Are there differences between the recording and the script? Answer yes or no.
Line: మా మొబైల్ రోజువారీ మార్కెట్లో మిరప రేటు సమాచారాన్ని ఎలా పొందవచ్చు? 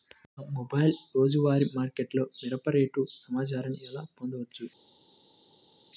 no